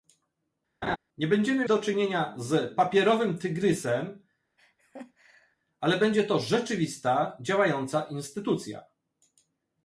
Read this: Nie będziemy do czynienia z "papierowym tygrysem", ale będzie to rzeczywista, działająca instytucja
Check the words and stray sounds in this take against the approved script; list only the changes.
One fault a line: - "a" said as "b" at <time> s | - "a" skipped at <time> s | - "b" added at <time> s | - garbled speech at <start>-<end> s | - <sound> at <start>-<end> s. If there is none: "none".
- laugh at 0.8-1.0 s
- laugh at 4.6-5.6 s